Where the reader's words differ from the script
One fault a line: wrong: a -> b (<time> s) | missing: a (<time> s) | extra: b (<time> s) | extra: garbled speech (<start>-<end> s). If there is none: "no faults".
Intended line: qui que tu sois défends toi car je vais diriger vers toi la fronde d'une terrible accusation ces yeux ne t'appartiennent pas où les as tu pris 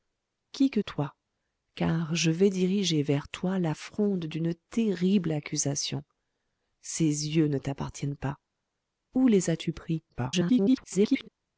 missing: tu sois défends (0.8 s)
extra: garbled speech (10.1-11.3 s)